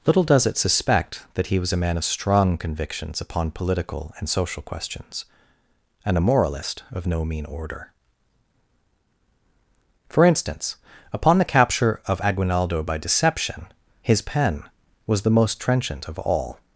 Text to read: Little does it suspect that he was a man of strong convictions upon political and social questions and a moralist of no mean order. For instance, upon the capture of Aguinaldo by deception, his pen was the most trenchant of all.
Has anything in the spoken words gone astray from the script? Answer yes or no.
no